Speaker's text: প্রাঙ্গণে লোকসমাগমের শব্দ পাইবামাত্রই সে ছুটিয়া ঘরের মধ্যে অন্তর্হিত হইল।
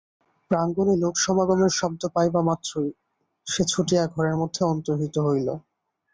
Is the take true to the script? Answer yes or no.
yes